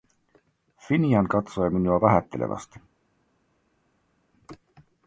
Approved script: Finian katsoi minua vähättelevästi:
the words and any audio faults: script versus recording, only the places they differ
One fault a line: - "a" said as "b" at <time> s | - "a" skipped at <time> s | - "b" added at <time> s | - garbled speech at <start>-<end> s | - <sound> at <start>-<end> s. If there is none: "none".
none